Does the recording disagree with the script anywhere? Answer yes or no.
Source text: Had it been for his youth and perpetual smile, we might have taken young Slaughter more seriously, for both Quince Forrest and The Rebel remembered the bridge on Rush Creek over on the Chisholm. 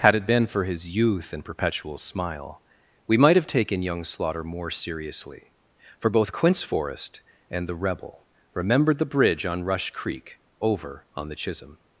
no